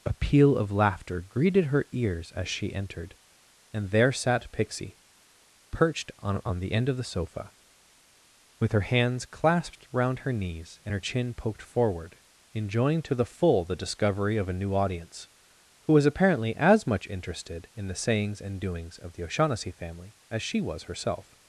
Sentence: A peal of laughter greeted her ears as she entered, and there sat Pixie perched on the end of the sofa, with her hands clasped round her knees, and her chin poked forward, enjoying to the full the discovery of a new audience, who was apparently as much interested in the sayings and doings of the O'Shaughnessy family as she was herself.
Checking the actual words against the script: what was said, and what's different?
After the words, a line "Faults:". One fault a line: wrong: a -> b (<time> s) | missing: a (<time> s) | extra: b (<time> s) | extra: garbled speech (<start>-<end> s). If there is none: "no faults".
A peal of laughter greeted her ears as she entered, and there sat Pixie perched on on the end of the sofa, with her hands clasped round her knees, and her chin poked forward, enjoying to the full the discovery of a new audience, who was apparently as much interested in the sayings and doings of the O'Shaughnessy family as she was herself.
Faults:
extra: on (6.4 s)